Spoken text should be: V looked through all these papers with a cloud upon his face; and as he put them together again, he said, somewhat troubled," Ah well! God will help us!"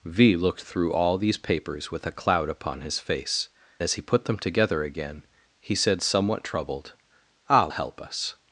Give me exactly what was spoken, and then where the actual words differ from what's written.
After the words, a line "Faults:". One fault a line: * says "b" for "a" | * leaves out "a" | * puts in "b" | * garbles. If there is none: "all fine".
V looked through all these papers with a cloud upon his face; as he put them together again, he said, somewhat troubled," Ah help us!"
Faults:
* leaves out "and"
* leaves out "well God will"